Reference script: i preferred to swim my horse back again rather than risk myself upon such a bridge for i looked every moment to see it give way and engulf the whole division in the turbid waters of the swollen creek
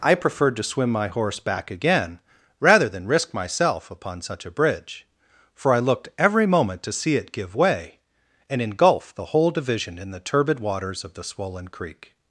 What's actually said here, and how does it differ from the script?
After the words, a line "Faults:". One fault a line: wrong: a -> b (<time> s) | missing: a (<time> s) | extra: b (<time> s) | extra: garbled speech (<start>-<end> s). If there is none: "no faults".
i preferred to swim my horse back again rather than risk myself upon such a bridge for i looked every moment to see it give way and engulf the whole division in the turbid waters of the swollen creek
Faults:
no faults